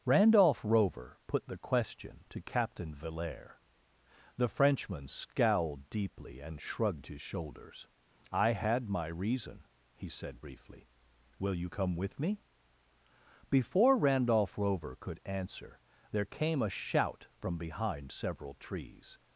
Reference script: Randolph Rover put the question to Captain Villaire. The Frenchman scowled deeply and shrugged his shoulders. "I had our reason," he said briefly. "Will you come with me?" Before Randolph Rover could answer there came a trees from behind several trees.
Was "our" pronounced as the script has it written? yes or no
no